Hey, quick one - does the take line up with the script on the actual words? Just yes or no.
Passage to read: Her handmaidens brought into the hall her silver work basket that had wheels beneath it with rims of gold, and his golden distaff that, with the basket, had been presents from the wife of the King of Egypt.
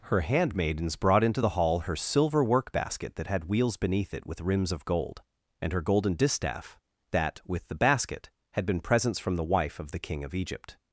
no